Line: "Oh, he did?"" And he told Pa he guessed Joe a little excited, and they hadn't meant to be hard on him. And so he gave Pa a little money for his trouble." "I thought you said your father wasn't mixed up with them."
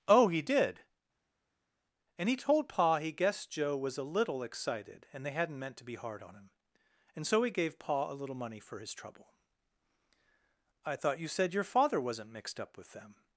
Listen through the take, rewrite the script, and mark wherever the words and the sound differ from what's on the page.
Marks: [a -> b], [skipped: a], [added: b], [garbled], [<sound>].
"Oh, he did?"" And he told Pa he guessed Joe [added: was] a little excited, and they hadn't meant to be hard on him. And so he gave Pa a little money for his trouble." "I thought you said your father wasn't mixed up with them."